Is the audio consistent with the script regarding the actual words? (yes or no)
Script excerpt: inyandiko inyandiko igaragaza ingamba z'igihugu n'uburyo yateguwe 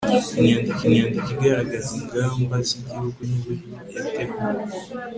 yes